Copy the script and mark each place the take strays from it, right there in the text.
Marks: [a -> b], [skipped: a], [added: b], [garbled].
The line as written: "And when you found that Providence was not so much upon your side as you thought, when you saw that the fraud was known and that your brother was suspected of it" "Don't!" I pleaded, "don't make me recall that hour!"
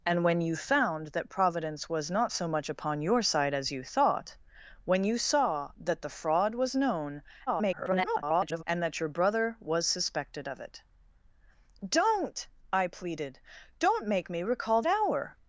"And when you found that Providence was not so much upon your side as you thought, when you saw that the fraud was known [garbled] and that your brother was suspected of it" "Don't!" I pleaded, "don't make me recall [skipped: that] hour!"